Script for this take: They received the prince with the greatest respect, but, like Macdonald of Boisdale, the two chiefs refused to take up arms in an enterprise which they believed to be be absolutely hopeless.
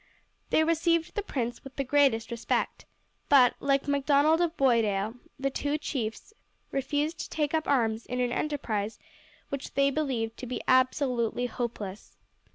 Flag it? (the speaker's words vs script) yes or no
yes